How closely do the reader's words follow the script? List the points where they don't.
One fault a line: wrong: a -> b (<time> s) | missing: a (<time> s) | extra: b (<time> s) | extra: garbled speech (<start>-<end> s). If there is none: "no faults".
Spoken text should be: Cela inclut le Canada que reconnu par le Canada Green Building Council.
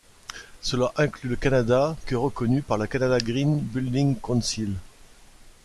no faults